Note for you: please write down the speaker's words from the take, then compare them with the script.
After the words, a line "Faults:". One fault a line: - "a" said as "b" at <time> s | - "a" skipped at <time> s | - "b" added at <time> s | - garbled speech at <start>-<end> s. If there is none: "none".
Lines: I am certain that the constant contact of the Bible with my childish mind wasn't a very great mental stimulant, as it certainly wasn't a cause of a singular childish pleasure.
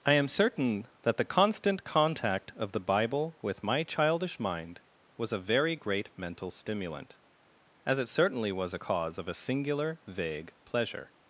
I am certain that the constant contact of the Bible with my childish mind was a very great mental stimulant, as it certainly was a cause of a singular vague pleasure.
Faults:
- "wasn't" said as "was" at 5.2 s
- "wasn't" said as "was" at 8.5 s
- "childish" said as "vague" at 10.1 s